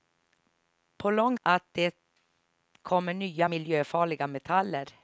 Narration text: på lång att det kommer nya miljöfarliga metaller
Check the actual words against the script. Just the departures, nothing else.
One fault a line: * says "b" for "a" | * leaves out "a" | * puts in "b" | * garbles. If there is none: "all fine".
all fine